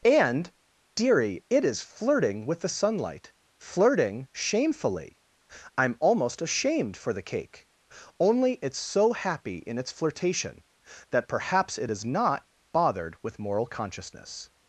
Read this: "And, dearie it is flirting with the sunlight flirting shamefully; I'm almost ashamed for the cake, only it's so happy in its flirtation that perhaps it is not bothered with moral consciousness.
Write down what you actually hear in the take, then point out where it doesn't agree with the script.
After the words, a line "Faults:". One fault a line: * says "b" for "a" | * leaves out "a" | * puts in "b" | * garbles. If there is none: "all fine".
"And, dearie it is flirting with the sunlight flirting shamefully; I'm almost ashamed for the cake, only it's so happy in its flirtation that perhaps it is not bothered with moral consciousness.
Faults:
all fine